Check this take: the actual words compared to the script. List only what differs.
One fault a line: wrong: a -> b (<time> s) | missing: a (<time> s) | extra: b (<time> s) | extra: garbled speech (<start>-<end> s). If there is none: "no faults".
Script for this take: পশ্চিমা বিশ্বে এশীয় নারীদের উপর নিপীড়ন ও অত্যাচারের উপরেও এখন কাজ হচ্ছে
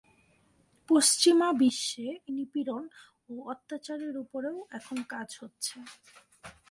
missing: এশীয় নারীদের উপর (2.1 s)